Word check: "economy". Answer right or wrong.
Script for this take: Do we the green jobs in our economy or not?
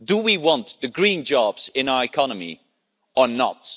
right